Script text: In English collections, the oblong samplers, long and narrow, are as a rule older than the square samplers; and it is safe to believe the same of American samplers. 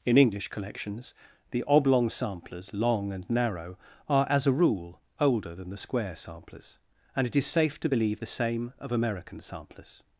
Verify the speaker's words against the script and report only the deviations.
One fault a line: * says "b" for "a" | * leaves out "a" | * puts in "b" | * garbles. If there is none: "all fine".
all fine